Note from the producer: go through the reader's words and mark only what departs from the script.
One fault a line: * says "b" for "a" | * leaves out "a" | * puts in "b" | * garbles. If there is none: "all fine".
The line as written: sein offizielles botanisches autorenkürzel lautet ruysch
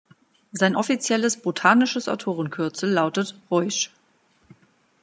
all fine